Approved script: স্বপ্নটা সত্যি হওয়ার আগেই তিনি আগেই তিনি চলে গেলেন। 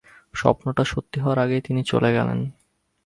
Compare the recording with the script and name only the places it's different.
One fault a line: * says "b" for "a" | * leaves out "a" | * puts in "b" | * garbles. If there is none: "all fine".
* leaves out "আগেই তিনি"